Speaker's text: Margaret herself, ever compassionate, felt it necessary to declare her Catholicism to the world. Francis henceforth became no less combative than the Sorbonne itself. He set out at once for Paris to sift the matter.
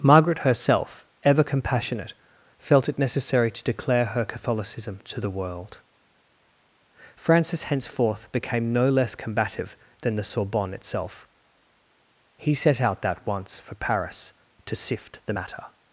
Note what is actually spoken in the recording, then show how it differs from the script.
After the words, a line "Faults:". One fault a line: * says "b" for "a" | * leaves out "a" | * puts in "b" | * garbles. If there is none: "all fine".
Margaret herself, ever compassionate, felt it necessary to declare her Catholicism to the world. Francis henceforth became no less combative than the Sorbonne itself. He set out that once for Paris to sift the matter.
Faults:
* says "that" for "at"